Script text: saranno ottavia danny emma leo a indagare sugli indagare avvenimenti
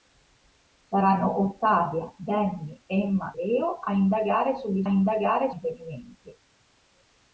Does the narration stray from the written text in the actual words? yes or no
no